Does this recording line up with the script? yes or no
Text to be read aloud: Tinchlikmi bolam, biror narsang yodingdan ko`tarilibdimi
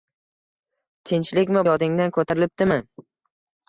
no